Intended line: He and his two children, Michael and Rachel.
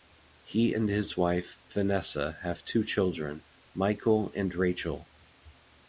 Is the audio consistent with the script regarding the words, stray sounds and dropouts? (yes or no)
no